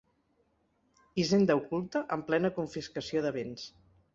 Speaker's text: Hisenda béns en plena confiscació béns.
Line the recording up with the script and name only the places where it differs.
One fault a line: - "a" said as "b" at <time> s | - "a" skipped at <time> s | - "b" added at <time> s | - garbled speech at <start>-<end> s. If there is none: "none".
- "béns" said as "oculta" at 1.6 s
- "de" added at 3.3 s